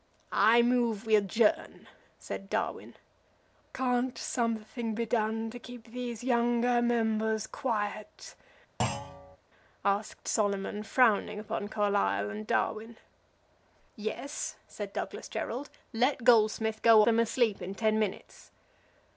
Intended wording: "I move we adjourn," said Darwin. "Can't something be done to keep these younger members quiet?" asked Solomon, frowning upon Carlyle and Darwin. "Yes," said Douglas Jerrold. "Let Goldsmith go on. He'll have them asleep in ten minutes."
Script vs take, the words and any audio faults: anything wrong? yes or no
yes